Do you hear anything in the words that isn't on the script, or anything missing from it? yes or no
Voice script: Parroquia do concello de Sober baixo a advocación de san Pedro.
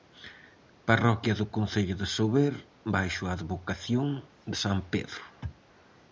no